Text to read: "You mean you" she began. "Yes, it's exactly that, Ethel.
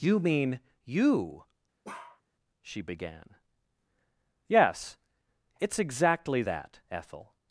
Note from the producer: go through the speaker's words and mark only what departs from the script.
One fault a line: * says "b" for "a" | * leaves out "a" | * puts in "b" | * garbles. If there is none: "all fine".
all fine